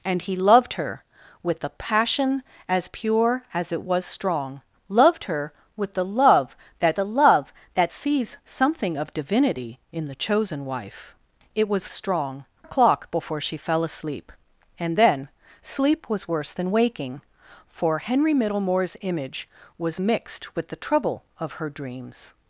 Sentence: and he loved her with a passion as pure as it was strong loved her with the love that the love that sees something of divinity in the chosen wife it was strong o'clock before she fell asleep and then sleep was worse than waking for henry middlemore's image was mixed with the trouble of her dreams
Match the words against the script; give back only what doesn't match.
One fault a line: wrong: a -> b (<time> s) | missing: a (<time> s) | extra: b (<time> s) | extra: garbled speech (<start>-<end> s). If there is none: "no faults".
no faults